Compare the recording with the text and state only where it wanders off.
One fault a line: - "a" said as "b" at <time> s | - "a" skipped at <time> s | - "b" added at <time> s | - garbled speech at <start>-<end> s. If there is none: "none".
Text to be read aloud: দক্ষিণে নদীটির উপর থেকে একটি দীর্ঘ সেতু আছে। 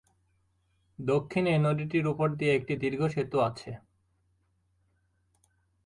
- "থেকে" said as "দিয়ে" at 2.3 s